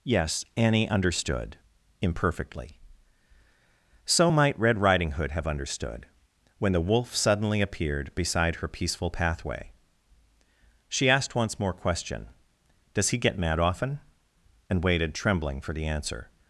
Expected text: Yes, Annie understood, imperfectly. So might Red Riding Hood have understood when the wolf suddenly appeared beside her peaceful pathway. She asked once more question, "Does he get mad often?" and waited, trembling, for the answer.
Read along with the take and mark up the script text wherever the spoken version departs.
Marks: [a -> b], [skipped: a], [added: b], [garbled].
Yes, Annie understood, imperfectly. So might Red Riding Hood have understood when the wolf suddenly appeared beside her peaceful pathway. She asked once more question, "Does he get mad often?" and waited, trembling, for the answer.